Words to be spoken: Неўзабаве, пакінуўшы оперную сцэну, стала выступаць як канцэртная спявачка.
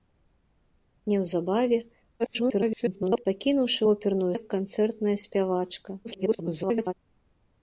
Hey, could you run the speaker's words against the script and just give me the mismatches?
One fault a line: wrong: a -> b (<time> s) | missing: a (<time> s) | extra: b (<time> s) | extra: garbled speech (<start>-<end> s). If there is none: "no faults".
extra: garbled speech (2.2-3.2 s)
missing: сцэну стала выступаць (4.3 s)
extra: garbled speech (6.0-6.9 s)